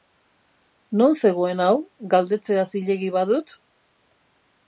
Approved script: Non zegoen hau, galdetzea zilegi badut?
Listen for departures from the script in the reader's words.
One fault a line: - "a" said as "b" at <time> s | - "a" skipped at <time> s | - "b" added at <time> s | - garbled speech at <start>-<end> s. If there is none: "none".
none